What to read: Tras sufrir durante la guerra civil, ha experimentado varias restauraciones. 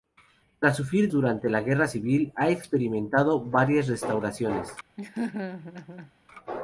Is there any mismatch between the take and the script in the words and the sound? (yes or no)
yes